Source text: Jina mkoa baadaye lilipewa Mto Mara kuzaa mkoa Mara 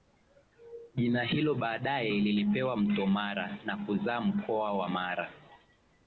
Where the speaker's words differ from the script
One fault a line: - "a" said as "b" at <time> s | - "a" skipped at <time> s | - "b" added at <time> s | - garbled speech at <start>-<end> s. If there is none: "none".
- "mkoa" said as "hilo" at 1.2 s
- "na" added at 3.6 s
- "wa" added at 4.7 s